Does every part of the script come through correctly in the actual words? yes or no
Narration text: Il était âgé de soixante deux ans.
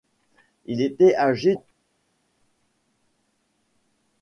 no